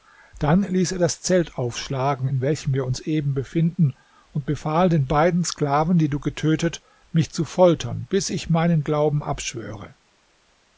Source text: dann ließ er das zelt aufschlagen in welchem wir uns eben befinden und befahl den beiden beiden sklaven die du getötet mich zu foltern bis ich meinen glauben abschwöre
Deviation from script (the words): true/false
true